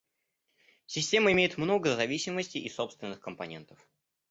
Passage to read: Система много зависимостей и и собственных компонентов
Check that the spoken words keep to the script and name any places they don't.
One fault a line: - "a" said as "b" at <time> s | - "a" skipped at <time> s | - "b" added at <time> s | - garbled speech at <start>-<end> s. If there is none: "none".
- "имеет" added at 1.3 s
- "и" skipped at 2.7 s